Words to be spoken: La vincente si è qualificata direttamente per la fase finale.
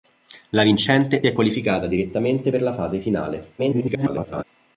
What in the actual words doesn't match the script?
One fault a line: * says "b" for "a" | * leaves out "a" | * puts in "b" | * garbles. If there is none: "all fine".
* leaves out "si"
* garbles